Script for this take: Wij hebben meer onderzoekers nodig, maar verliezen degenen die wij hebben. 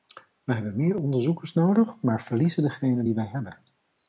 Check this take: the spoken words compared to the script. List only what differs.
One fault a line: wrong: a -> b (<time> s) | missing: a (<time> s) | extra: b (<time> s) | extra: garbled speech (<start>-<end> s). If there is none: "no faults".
no faults